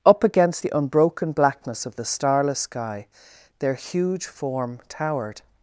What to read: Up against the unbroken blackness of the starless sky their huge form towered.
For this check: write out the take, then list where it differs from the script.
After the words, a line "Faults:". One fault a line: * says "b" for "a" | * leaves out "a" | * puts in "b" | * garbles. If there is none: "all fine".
Up against the unbroken blackness of the starless sky their huge form towered.
Faults:
all fine